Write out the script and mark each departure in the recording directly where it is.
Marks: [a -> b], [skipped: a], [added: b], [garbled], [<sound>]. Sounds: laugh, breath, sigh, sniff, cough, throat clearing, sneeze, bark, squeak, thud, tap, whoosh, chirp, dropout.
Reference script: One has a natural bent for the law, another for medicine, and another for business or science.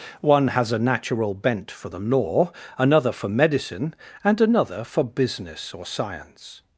One has a natural bent for the law, another for medicine, and another for business or science.